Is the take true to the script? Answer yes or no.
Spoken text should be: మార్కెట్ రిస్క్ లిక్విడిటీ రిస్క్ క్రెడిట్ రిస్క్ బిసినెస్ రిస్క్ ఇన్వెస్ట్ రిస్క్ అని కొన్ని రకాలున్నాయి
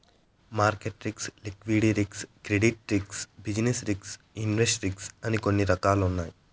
yes